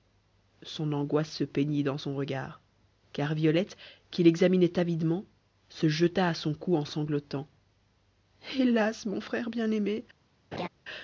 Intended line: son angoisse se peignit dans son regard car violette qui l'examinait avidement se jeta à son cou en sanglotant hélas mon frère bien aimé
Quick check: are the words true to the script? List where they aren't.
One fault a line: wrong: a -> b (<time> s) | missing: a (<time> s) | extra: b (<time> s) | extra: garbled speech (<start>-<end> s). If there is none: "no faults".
no faults